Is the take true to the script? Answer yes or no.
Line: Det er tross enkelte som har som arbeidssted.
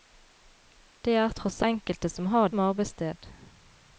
yes